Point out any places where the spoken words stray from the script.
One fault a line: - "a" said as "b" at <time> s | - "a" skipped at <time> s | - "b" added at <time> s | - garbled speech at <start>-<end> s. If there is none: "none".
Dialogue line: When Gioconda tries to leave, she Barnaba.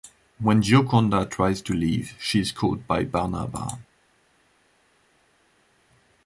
- "is caught by" added at 2.4 s